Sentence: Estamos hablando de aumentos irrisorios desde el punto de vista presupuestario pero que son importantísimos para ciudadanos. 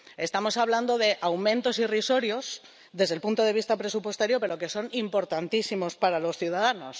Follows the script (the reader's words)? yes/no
no